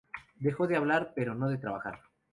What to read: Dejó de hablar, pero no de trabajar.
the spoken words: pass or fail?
pass